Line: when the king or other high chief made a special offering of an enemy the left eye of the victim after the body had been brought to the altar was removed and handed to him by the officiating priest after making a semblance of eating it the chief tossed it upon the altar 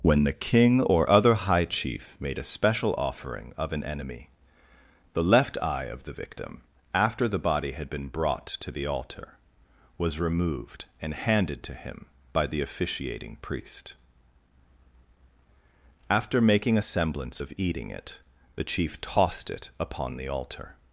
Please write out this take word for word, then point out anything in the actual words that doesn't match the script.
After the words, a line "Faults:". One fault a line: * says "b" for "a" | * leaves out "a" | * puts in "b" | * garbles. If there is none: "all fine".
when the king or other high chief made a special offering of an enemy the left eye of the victim after the body had been brought to the altar was removed and handed to him by the officiating priest after making a semblance of eating it the chief tossed it upon the altar
Faults:
all fine